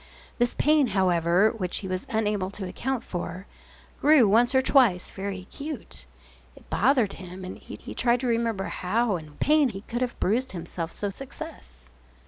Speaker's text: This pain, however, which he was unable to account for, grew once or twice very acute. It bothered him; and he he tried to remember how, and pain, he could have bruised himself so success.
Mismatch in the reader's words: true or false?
false